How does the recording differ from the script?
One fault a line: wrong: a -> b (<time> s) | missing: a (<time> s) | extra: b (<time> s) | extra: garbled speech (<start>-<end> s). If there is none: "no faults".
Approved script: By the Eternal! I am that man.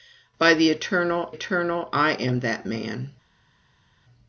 extra: Eternal (1.3 s)